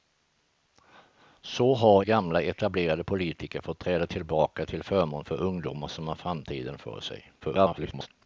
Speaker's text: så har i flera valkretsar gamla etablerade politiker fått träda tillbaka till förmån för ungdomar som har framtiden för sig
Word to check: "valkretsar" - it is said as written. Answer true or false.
false